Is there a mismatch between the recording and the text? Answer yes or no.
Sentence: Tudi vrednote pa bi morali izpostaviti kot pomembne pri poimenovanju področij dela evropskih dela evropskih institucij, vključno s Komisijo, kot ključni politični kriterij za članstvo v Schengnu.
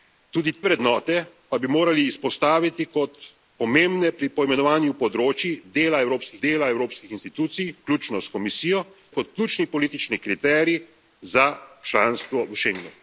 no